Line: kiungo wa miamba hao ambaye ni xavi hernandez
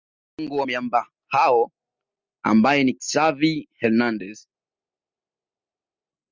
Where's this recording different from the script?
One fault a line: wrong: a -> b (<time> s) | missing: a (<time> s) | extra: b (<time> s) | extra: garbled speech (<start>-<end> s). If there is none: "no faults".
no faults